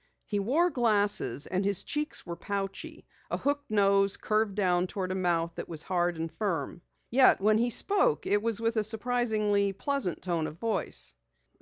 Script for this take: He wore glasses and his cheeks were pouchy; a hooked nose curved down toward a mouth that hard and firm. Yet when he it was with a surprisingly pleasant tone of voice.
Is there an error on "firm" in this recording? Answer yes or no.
no